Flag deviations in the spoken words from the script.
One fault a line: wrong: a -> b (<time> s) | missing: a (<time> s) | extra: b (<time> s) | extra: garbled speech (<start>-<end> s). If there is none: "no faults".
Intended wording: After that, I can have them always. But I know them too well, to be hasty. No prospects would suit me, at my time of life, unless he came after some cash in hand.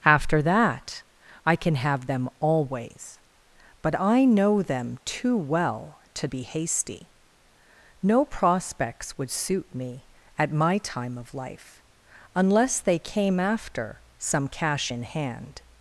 wrong: he -> they (12.8 s)